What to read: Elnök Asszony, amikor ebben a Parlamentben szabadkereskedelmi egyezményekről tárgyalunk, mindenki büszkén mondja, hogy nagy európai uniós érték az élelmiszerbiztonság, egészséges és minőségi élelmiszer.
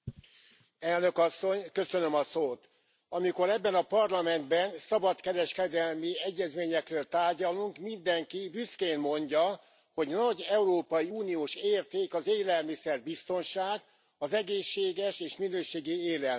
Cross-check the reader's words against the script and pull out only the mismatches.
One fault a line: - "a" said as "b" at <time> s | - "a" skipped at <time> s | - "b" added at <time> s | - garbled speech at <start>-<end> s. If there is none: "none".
- "az" added at 14.2 s